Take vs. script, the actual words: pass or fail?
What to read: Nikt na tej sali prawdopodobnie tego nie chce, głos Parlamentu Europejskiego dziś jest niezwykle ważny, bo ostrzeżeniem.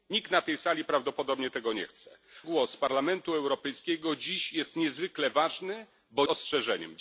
pass